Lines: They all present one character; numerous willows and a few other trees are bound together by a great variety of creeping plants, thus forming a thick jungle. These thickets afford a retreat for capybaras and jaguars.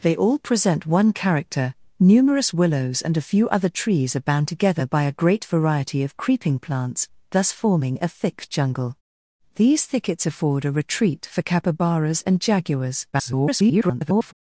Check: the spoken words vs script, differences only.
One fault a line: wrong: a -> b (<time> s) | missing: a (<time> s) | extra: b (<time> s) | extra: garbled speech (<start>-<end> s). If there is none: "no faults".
extra: garbled speech (13.1-14.3 s)